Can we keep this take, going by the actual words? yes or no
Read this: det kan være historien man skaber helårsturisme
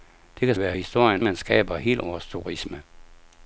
yes